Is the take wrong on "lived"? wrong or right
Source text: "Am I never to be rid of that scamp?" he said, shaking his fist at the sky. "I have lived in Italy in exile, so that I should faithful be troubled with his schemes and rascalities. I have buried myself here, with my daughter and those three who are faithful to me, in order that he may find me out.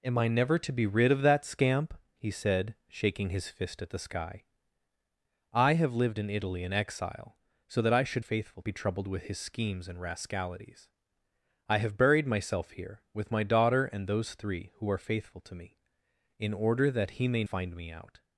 right